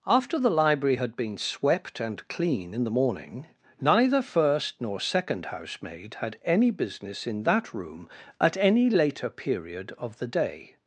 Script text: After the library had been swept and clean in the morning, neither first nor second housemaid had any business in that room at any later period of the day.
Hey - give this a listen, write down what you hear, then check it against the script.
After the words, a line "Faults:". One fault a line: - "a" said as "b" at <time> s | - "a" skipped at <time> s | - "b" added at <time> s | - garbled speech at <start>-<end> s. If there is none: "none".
After the library had been swept and clean in the morning, neither first nor second housemaid had any business in that room at any later period of the day.
Faults:
none